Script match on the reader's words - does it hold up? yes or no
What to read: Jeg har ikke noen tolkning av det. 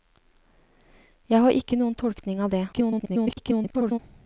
no